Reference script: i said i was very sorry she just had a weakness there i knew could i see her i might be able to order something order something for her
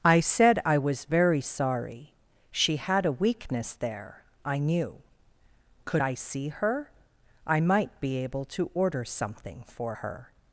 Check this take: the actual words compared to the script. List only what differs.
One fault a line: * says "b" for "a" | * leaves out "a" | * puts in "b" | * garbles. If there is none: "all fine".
* leaves out "just"
* leaves out "order something"